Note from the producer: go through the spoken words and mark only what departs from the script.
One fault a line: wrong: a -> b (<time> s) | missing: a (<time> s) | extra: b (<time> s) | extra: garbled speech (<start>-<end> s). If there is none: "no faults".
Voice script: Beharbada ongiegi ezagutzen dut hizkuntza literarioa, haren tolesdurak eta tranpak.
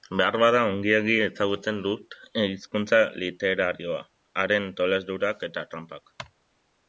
no faults